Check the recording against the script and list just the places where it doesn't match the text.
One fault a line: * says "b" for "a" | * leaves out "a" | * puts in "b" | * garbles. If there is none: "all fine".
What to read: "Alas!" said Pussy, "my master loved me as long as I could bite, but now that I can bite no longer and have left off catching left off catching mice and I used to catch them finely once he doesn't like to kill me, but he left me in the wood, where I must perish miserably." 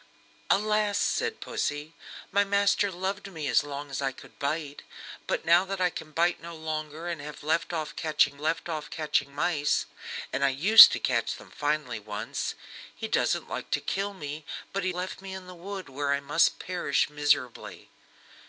all fine